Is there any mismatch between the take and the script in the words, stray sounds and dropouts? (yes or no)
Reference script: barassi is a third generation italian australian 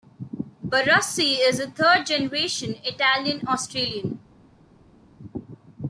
no